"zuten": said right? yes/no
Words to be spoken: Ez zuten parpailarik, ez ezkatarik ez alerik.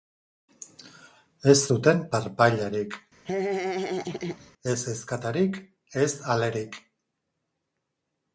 yes